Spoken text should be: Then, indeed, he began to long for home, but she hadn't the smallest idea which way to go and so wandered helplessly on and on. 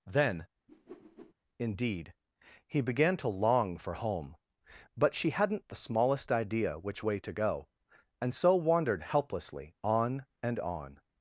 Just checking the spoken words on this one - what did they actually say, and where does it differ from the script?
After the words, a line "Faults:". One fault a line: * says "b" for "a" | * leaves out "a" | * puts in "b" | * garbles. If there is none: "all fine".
Then, indeed, he began to long for home, but she hadn't the smallest idea which way to go and so wandered helplessly on and on.
Faults:
all fine